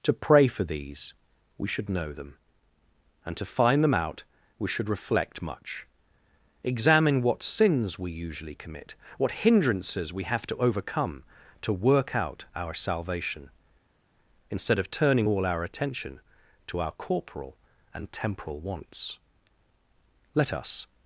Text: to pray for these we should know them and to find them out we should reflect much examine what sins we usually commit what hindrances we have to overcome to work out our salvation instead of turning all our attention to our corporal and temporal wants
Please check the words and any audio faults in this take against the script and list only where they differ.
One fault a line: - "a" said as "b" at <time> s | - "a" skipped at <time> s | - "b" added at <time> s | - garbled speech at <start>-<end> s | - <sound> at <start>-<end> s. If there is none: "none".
- "let us" added at 20.3 s